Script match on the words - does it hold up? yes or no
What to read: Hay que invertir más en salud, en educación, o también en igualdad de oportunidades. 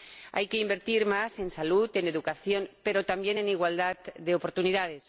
no